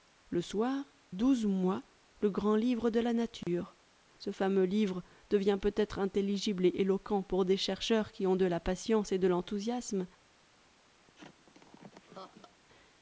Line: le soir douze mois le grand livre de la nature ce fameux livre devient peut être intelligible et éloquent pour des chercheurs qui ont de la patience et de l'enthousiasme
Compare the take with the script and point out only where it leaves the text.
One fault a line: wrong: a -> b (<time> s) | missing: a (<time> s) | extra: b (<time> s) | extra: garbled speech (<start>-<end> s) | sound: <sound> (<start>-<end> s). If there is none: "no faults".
sound: dropout (3.4-3.5 s)
sound: laugh (11.0-12.6 s)